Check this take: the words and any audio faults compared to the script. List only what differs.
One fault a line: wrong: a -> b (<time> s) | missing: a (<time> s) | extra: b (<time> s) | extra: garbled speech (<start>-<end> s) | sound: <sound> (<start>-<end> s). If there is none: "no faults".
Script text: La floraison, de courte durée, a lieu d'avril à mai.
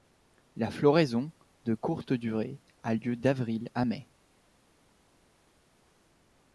no faults